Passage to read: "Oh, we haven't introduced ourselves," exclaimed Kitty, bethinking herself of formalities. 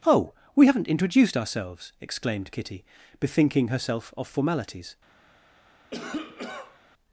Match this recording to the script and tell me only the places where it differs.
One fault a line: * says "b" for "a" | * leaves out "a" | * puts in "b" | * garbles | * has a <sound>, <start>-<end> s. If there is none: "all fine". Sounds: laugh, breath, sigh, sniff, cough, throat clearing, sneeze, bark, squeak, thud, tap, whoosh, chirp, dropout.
* has a cough, 5.9-6.8 s